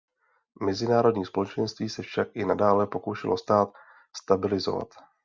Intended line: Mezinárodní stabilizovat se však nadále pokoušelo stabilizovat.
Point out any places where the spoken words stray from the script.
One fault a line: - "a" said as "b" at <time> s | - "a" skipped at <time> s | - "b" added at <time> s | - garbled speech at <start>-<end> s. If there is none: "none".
- "stabilizovat" said as "společenství" at 1.2 s
- "i" added at 2.3 s
- "stát" added at 3.4 s